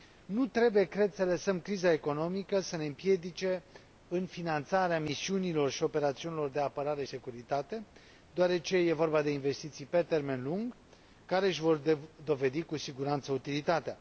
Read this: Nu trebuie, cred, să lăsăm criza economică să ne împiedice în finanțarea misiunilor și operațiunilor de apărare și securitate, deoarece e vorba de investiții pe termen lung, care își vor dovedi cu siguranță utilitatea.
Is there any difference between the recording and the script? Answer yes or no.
yes